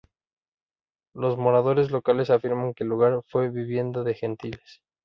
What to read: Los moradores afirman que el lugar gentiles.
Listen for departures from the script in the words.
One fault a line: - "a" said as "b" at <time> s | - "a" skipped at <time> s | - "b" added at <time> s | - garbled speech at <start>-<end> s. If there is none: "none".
- "locales" added at 1.9 s
- "fue vivienda de" added at 3.3 s